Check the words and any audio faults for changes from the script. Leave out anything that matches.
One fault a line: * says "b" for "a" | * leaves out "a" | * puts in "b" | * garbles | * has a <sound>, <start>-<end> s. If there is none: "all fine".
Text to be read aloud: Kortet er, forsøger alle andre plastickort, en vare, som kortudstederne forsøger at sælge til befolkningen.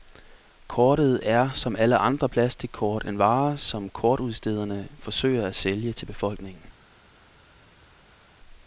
* says "som" for "forsøger"